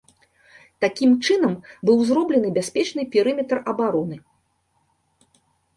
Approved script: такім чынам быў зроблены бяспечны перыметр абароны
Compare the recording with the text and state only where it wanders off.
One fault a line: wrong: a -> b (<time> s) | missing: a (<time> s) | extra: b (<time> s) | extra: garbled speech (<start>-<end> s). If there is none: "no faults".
no faults